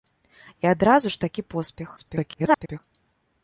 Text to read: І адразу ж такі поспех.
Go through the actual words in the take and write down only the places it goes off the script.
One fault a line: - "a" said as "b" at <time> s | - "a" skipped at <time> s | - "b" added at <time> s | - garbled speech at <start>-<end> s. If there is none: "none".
- garbled speech at 2.0-2.8 s